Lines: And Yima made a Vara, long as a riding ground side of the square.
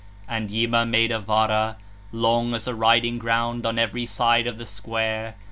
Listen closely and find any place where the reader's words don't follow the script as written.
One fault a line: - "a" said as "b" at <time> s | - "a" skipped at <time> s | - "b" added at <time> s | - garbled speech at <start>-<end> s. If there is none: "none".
- "on every" added at 3.7 s